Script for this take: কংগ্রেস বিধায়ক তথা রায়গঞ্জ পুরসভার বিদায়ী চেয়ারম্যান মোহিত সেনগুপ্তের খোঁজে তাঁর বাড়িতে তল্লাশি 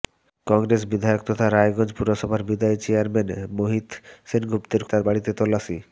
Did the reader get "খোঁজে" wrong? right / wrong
wrong